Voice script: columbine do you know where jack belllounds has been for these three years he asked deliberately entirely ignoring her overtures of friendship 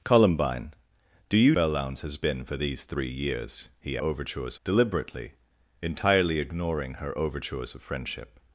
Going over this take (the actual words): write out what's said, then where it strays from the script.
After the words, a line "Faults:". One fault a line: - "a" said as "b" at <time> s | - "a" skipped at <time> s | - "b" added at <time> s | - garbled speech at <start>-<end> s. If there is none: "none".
columbine do you belllounds has been for these three years he overtures deliberately entirely ignoring her overtures of friendship
Faults:
- "know where jack" skipped at 1.6 s
- "asked" said as "overtures" at 4.0 s